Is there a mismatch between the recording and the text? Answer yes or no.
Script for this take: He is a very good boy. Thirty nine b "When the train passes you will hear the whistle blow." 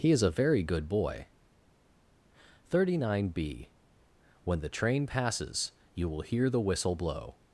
no